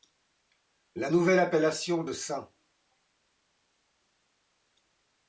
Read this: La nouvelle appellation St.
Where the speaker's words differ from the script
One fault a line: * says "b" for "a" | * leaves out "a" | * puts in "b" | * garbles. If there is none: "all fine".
* puts in "de"